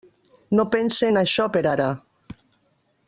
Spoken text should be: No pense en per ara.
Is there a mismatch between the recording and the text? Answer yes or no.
yes